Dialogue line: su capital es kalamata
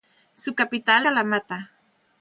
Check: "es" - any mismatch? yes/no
yes